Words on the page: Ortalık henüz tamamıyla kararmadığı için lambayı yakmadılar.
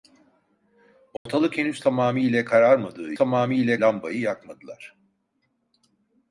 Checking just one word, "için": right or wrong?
wrong